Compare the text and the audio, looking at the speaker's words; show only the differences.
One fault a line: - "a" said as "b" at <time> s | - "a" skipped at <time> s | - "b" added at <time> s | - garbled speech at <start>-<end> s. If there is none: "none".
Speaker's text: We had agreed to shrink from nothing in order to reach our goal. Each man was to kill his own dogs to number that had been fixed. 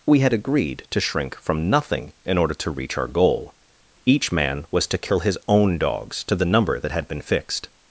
- "the" added at 6.3 s